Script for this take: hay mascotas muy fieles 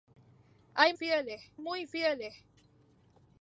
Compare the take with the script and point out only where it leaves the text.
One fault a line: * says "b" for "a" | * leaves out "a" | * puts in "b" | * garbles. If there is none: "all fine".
* says "fieles" for "mascotas"